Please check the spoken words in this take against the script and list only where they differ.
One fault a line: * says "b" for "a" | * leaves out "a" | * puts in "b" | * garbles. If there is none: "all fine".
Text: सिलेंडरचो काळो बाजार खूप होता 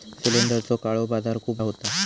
all fine